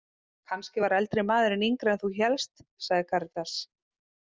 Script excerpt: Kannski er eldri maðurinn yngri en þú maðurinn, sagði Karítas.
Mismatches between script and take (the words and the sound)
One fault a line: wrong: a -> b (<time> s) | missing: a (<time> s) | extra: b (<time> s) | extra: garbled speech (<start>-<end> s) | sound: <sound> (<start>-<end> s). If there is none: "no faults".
wrong: er -> var (0.8 s)
wrong: maðurinn -> hélst (2.2 s)